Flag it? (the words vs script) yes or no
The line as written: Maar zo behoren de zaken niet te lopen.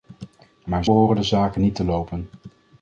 yes